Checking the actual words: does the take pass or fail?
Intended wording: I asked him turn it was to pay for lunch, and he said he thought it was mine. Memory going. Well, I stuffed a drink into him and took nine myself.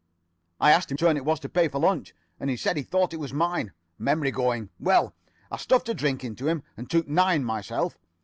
pass